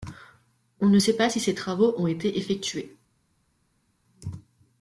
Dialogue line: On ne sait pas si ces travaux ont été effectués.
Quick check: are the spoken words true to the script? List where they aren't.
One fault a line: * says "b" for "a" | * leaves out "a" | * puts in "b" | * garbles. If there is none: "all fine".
all fine